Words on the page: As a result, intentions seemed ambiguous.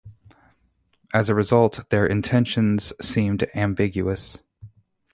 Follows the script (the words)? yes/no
no